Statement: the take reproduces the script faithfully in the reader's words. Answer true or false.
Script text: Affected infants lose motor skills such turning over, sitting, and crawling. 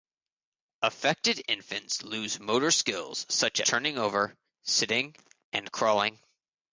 true